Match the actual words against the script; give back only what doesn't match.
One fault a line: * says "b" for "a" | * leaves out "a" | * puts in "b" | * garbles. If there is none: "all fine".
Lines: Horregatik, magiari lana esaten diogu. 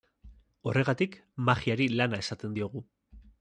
all fine